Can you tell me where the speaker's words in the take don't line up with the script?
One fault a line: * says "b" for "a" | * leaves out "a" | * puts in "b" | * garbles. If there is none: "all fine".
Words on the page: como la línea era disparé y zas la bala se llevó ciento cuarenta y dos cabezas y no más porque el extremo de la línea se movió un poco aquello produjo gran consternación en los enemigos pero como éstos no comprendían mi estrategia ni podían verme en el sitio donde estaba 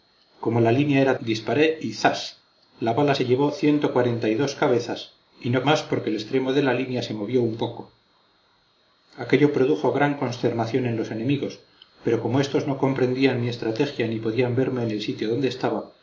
all fine